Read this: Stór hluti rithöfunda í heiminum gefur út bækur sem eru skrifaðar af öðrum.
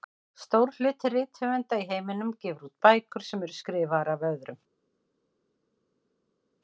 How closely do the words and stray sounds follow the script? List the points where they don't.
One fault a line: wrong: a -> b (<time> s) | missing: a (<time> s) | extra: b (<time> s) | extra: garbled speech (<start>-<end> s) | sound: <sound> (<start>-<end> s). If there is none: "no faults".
no faults